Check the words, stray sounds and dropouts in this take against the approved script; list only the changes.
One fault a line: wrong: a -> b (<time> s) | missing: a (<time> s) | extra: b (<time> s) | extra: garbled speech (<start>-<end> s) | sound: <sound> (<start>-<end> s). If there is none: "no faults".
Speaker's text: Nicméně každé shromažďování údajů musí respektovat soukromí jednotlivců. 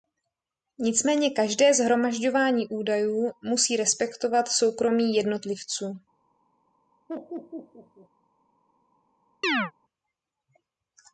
sound: laugh (7.1-8.1 s)
sound: chirp (9.4-9.7 s)